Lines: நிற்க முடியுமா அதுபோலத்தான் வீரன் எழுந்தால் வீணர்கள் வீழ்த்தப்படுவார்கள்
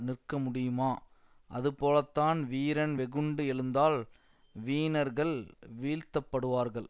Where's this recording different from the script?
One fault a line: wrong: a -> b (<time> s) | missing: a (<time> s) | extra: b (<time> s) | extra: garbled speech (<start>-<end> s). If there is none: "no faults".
extra: வெகுண்டு (2.9 s)